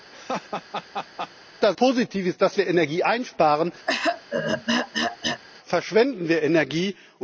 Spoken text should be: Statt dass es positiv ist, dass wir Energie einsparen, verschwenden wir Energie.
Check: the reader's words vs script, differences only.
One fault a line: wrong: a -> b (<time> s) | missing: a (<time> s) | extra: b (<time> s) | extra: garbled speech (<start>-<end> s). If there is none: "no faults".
missing: es (1.8 s)